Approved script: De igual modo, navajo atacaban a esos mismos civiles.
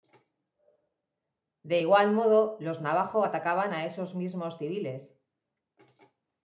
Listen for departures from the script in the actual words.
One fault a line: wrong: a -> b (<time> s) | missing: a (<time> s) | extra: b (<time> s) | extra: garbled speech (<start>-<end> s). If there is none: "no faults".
extra: los (2.6 s)